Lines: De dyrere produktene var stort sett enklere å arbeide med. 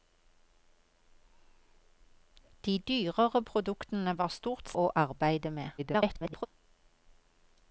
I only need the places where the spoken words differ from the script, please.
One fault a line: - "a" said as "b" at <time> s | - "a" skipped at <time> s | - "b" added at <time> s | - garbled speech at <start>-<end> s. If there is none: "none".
- "sett enklere" skipped at 4.7 s
- garbled speech at 5.8-6.5 s